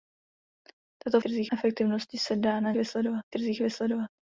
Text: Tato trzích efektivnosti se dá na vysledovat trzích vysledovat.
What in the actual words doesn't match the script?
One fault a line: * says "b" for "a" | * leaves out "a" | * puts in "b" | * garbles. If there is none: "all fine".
all fine